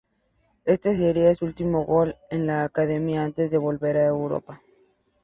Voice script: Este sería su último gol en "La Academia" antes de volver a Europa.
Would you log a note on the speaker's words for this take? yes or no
no